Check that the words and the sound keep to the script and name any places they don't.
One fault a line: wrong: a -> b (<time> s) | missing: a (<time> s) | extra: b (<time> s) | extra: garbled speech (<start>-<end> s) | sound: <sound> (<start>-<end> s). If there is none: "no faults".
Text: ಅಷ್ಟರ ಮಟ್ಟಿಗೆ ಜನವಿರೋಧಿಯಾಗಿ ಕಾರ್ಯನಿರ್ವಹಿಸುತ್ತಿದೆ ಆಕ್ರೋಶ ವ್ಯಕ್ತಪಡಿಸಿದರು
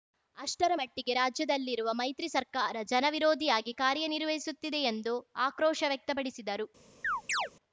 extra: ರಾಜ್ಯದಲ್ಲಿರುವ ಮೈತ್ರಿ ಸರ್ಕಾರ (1.1 s)
extra: ಎಂದು (4.9 s)
sound: chirp (7.0-7.5 s)